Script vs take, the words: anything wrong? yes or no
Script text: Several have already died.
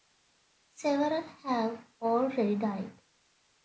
no